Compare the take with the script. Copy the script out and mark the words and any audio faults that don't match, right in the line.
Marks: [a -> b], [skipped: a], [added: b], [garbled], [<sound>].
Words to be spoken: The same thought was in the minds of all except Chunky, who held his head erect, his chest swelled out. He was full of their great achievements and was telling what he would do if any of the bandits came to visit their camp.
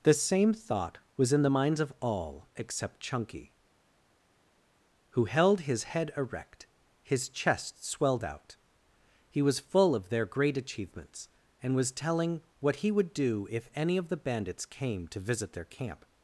The same thought was in the minds of all except Chunky, who held his head erect, his chest swelled out. He was full of their great achievements and was telling what he would do if any of the bandits came to visit their camp.